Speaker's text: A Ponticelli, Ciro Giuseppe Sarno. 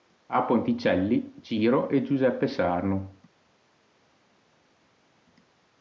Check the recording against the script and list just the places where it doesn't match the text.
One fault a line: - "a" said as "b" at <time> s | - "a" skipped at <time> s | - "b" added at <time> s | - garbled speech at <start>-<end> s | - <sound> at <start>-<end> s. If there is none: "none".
- "e" added at 1.9 s